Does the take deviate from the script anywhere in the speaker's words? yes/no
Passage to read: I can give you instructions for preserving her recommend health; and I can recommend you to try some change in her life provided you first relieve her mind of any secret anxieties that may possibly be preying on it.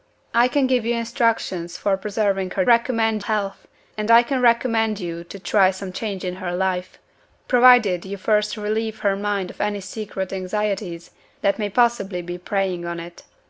no